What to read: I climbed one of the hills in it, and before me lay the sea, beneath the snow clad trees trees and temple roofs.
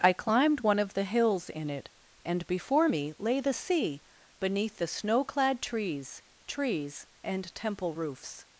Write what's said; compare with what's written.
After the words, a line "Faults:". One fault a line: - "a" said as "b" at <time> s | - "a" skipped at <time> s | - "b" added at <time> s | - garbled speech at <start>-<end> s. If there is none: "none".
I climbed one of the hills in it, and before me lay the sea, beneath the snow clad trees trees and temple roofs.
Faults:
none